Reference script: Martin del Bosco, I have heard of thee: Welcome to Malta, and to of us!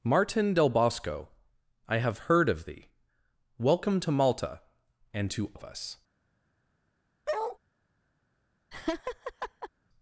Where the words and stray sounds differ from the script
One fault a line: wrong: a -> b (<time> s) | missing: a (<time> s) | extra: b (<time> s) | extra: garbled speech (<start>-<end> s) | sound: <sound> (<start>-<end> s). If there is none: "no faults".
sound: bark (7.3-7.6 s)
sound: laugh (8.7-9.7 s)